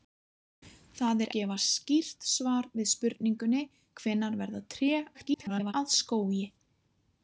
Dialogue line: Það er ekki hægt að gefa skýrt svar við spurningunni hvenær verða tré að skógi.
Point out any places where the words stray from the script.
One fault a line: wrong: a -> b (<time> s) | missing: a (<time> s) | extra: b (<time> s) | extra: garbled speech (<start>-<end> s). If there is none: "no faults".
missing: ekki hægt að (1.3 s)
extra: garbled speech (5.1-5.7 s)